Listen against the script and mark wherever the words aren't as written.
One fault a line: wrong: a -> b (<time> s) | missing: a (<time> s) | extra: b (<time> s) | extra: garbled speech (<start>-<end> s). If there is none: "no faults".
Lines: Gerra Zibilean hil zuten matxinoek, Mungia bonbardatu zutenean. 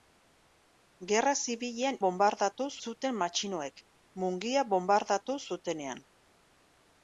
wrong: hil -> bonbardatu (2.1 s)